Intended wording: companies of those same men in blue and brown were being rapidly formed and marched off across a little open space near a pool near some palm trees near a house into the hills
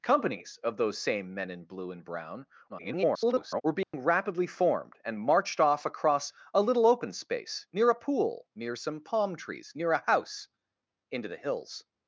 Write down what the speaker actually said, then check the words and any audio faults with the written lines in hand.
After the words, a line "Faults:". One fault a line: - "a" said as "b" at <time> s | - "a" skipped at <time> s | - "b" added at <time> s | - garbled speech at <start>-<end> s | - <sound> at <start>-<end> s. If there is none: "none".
companies of those same men in blue and brown [garbled] were being rapidly formed and marched off across a little open space near a pool near some palm trees near a house into the hills
Faults:
- garbled speech at 2.7-3.6 s
- dropout at 3.8-3.9 s